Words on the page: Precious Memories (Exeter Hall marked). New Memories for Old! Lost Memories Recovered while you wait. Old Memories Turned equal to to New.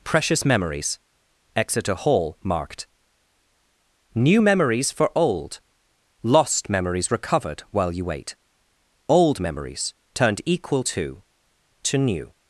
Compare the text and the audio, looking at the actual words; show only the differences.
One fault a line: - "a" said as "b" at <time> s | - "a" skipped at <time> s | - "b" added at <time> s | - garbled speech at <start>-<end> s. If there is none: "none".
none